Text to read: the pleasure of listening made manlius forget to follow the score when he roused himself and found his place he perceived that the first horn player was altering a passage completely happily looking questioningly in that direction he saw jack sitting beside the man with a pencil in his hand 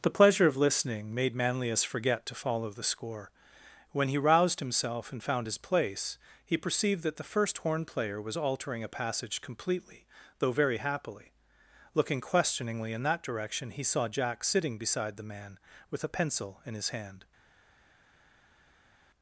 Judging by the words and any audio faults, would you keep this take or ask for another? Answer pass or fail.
fail